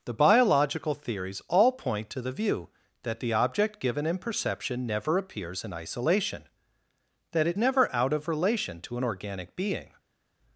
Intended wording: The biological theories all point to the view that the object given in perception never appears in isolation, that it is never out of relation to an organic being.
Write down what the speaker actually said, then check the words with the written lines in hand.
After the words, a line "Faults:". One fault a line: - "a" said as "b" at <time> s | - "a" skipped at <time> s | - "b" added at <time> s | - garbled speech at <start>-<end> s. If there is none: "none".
The biological theories all point to the view that the object given in perception never appears in isolation, that it never out of relation to an organic being.
Faults:
- "is" skipped at 7.6 s